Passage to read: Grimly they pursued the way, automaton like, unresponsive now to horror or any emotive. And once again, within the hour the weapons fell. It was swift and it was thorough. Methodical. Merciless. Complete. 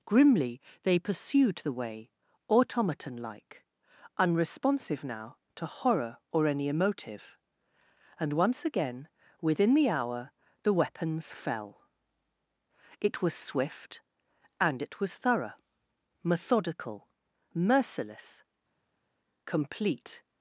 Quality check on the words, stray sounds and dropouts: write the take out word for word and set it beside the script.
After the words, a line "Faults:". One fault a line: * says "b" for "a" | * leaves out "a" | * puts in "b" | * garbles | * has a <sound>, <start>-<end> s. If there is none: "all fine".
Grimly they pursued the way, automaton like, unresponsive now to horror or any emotive. And once again, within the hour the weapons fell. It was swift and it was thorough. Methodical. Merciless. Complete.
Faults:
all fine